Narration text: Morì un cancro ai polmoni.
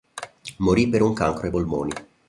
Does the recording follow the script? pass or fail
fail